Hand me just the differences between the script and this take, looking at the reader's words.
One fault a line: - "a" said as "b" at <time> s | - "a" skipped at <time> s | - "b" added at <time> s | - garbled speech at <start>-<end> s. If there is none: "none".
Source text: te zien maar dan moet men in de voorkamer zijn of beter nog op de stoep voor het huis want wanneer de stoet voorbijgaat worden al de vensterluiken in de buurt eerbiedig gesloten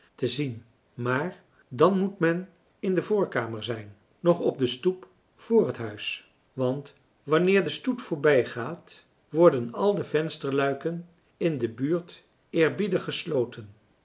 - "of beter" skipped at 4.0 s